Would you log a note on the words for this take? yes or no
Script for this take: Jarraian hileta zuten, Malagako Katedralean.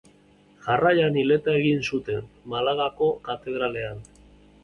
yes